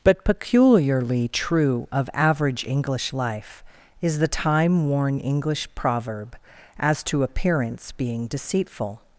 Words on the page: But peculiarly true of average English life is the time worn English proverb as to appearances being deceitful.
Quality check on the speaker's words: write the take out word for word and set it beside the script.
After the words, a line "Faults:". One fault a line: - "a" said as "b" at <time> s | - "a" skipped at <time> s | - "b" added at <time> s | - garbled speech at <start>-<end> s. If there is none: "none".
But peculiarly true of average English life is the time worn English proverb as to appearance being deceitful.
Faults:
- "appearances" said as "appearance" at 7.2 s